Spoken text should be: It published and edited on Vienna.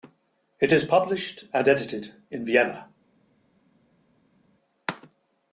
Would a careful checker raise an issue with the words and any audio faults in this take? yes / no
yes